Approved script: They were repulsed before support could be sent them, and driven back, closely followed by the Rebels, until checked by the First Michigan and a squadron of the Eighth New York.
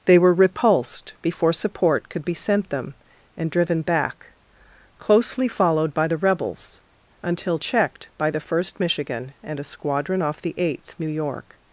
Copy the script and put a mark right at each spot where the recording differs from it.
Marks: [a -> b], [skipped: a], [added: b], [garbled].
They were repulsed before support could be sent them, and driven back, closely followed by the Rebels, until checked by the First Michigan and a squadron [of -> off] the Eighth New York.